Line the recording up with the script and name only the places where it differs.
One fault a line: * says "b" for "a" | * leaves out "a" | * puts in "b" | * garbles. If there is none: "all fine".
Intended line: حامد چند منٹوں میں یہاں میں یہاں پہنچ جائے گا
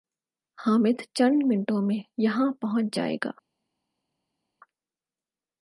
* leaves out "میں یہاں"